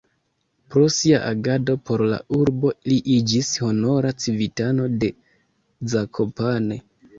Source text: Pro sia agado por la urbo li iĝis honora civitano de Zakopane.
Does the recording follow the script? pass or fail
pass